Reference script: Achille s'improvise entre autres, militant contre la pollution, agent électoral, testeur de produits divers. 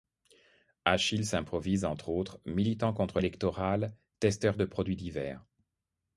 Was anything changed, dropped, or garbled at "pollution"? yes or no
yes